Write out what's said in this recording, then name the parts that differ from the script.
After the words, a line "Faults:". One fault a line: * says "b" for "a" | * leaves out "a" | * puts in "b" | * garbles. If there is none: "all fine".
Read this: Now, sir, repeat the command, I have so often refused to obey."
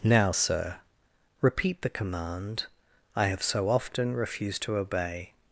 Now, sir, repeat the command, I have so often refused to obey."
Faults:
all fine